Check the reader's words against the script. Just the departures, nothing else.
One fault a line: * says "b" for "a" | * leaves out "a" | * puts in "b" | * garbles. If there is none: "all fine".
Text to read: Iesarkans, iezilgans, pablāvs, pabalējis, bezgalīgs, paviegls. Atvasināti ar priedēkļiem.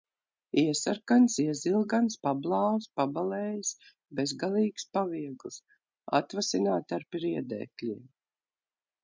all fine